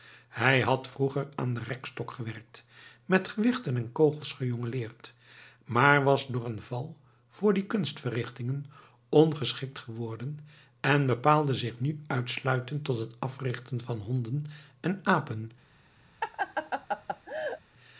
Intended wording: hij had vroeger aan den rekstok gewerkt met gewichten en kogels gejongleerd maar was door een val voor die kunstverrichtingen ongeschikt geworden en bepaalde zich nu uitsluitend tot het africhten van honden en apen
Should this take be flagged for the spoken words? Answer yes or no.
no